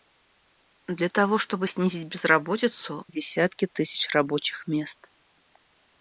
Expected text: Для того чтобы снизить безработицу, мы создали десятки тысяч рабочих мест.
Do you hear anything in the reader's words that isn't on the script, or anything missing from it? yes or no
yes